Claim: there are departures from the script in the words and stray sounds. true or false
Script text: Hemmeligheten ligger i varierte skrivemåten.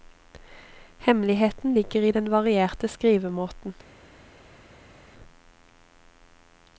true